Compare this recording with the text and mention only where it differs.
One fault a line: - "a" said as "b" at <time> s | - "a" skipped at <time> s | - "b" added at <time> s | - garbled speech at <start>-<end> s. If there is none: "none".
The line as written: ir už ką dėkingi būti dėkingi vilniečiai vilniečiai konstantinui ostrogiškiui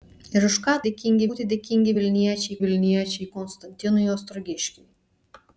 none